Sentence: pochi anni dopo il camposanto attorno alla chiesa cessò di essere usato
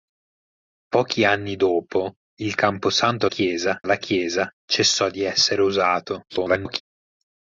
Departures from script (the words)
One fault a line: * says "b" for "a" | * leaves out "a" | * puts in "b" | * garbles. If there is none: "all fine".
* says "chiesa" for "attorno"
* garbles